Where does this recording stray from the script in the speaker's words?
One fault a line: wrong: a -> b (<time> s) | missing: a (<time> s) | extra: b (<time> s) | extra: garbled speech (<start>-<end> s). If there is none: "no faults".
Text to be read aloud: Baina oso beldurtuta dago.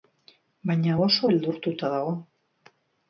no faults